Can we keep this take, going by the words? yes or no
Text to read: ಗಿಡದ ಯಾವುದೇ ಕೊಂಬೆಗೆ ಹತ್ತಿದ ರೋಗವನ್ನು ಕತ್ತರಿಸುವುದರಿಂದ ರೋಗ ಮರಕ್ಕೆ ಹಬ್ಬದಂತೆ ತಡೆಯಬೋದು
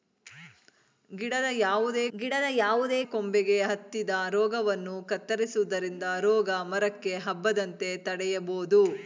no